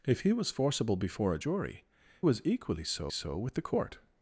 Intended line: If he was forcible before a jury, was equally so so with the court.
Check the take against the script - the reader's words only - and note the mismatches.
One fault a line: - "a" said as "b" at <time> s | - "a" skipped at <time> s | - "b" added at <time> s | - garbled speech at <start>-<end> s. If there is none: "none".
none